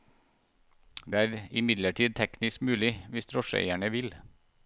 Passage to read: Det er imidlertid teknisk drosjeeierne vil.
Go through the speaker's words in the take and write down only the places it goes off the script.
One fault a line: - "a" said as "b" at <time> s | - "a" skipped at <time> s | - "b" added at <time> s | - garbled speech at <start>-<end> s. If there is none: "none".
- "mulig hvis" added at 2.6 s